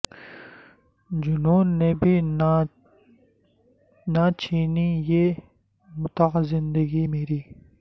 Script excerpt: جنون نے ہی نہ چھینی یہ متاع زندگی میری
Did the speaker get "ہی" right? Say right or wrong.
wrong